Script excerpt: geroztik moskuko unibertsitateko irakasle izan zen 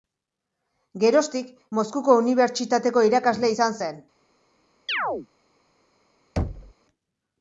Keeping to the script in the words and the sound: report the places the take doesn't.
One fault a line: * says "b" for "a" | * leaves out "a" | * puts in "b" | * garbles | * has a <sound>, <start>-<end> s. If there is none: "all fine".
* has a chirp, 4.9-5.3 s
* has a thud, 6.4-6.7 s